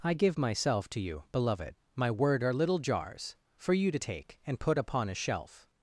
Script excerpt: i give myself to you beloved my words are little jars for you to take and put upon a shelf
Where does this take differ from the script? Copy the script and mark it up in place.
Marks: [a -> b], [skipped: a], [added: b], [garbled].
i give myself to you beloved my [words -> word] are little jars for you to take and put upon a shelf